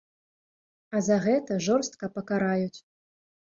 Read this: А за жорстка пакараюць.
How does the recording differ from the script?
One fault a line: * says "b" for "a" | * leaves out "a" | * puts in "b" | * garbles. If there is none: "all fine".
* puts in "гэта"